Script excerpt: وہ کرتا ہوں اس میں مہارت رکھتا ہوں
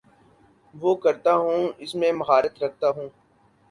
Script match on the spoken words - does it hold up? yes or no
yes